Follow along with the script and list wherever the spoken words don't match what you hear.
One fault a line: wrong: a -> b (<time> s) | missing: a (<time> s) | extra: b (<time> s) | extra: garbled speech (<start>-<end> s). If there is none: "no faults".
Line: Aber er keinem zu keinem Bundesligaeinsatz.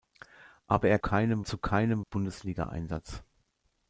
no faults